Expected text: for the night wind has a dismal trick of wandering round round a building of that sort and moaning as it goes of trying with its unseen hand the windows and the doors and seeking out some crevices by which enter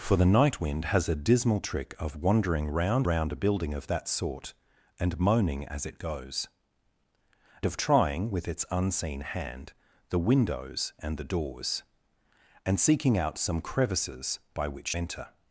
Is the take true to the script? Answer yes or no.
yes